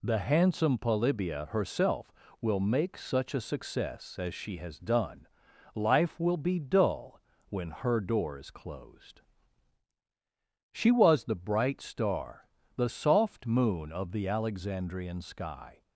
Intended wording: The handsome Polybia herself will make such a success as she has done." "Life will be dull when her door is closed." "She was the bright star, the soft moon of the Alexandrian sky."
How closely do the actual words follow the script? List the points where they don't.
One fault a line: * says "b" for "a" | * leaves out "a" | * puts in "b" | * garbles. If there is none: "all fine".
all fine